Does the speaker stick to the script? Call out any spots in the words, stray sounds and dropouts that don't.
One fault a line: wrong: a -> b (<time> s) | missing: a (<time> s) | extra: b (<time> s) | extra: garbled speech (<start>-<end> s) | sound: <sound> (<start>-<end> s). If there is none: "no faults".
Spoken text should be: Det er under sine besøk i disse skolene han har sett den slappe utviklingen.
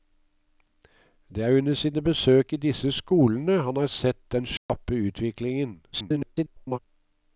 sound: dropout (4.6-4.7 s)
extra: garbled speech (5.9-6.8 s)